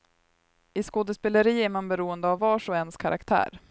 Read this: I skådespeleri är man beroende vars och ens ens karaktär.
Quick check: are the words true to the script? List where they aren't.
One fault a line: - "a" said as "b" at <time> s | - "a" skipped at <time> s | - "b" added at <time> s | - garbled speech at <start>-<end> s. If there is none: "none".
- "av" added at 2.3 s
- "ens" skipped at 3.0 s